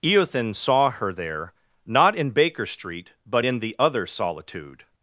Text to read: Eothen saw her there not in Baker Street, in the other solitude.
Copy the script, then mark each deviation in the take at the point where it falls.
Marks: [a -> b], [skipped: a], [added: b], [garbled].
Eothen saw her there not in Baker Street, [added: but] in the other solitude.